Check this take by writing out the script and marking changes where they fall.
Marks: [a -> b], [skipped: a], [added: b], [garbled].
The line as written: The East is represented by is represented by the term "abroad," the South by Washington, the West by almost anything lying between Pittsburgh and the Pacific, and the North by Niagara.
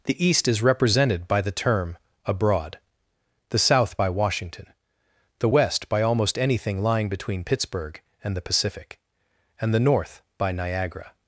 The East is represented by [skipped: is represented by] the term "abroad," the South by Washington, the West by almost anything lying between Pittsburgh and the Pacific, and the North by Niagara.